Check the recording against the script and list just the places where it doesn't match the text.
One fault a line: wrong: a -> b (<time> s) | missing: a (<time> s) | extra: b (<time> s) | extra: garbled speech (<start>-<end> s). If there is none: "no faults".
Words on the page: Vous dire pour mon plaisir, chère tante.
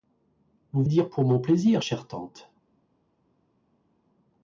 no faults